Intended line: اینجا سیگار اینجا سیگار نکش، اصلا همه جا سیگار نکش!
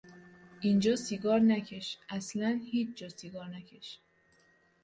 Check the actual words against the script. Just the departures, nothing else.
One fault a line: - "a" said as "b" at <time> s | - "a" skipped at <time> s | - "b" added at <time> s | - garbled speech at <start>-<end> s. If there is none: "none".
- "اینجا سیگار" skipped at 1.4 s
- "همه" said as "هیچ" at 2.7 s